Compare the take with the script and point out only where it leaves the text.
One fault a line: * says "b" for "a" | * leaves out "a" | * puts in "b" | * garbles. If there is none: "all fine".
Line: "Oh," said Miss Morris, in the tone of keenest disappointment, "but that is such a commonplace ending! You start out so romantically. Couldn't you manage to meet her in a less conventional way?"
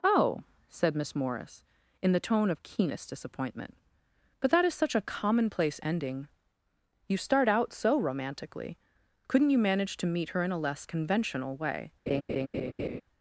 all fine